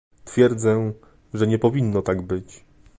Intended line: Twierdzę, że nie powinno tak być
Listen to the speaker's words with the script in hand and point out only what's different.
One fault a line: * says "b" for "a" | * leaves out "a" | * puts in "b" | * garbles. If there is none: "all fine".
all fine